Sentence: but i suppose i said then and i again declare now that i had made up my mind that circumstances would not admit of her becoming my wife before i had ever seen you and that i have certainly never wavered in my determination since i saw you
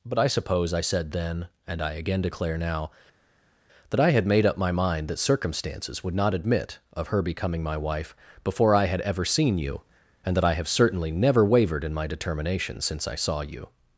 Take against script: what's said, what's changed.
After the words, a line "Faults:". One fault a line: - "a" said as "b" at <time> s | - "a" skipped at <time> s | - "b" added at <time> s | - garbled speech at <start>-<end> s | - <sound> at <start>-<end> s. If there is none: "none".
but i suppose i said then and i again declare now that i had made up my mind that circumstances would not admit of her becoming my wife before i had ever seen you and that i have certainly never wavered in my determination since i saw you
Faults:
none